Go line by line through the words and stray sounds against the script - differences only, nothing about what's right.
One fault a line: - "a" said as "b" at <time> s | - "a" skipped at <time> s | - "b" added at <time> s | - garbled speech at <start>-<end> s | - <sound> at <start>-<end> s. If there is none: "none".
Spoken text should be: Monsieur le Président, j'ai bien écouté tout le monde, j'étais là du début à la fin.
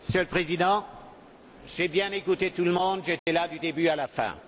- dropout at 3.2-3.3 s